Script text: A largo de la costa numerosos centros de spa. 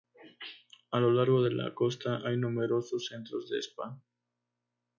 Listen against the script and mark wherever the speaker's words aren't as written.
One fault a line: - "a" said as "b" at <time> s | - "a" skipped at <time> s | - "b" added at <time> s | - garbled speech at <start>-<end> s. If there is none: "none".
- "lo" added at 1.0 s
- "hay" added at 2.3 s